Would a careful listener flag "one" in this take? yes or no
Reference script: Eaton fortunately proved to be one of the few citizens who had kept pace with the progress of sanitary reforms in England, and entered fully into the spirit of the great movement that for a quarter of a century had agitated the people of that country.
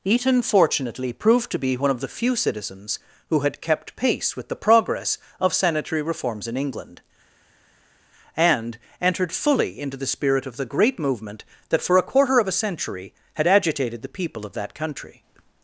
no